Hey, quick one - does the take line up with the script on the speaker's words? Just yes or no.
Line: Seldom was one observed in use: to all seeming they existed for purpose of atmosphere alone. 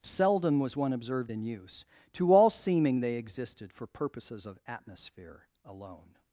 no